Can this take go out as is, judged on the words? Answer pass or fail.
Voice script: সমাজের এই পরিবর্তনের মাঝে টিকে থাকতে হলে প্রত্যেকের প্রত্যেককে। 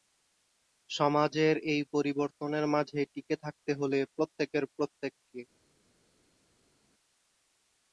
pass